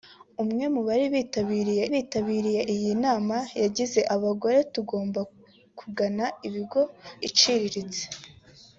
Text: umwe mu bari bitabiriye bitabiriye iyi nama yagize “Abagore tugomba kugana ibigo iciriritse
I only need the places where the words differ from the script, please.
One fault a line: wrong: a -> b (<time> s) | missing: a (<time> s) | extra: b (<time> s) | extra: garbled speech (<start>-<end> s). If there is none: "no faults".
no faults